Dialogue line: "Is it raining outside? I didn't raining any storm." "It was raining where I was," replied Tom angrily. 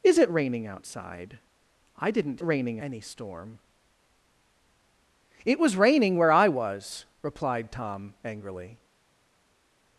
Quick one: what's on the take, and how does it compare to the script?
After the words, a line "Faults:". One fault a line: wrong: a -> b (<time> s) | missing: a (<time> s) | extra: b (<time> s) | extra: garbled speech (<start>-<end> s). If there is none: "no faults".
"Is it raining outside? I didn't raining any storm." "It was raining where I was," replied Tom angrily.
Faults:
no faults